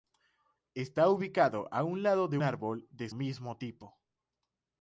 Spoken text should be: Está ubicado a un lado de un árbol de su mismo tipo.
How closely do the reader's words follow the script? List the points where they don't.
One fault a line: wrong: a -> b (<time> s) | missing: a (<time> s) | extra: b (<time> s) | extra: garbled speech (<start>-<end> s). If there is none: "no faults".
missing: un (2.4 s)
missing: su (3.1 s)